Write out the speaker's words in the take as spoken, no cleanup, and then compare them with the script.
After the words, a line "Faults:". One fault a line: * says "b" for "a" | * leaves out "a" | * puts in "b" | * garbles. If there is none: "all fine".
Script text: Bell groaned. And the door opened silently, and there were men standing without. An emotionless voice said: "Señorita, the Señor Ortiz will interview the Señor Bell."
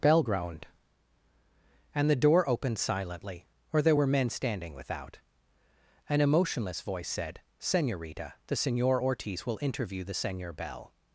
Bell groaned. And the door opened silently, or there were men standing without. An emotionless voice said: "Señorita, the Señor Ortiz will interview the Señor Bell."
Faults:
* says "or" for "and"